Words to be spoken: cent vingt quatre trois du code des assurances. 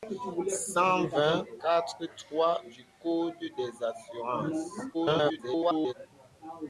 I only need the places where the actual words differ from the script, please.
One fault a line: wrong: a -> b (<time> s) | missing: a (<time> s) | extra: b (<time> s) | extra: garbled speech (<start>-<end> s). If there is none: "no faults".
extra: garbled speech (4.9-5.9 s)